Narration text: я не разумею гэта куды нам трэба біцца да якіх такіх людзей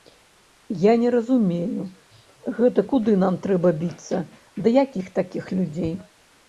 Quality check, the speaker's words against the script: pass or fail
pass